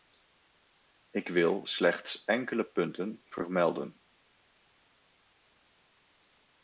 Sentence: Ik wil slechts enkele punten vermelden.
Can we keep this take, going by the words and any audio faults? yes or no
yes